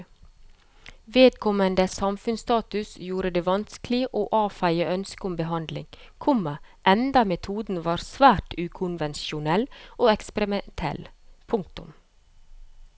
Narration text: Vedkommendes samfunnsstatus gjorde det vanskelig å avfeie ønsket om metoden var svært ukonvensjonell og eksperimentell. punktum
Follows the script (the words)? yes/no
no